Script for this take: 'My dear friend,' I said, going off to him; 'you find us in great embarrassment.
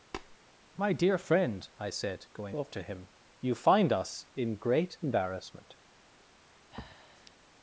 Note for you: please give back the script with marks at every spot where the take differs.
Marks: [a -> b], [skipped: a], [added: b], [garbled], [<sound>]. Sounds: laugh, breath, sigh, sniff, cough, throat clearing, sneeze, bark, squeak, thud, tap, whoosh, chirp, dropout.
[tap] 'My dear friend,' I said, going off to him; 'you find us in great embarrassment. [breath]